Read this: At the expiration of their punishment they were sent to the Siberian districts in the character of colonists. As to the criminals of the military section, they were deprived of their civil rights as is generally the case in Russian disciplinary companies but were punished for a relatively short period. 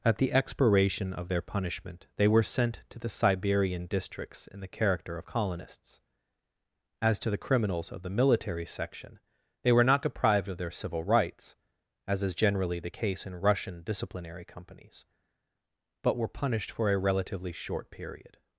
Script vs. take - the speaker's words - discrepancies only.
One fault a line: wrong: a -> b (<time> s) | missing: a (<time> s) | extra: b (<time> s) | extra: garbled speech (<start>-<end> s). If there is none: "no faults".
extra: not (9.8 s)